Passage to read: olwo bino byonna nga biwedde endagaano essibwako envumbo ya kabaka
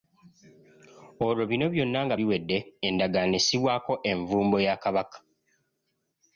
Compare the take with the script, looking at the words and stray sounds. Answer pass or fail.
pass